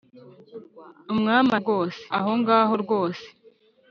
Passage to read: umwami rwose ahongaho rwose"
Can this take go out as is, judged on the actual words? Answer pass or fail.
pass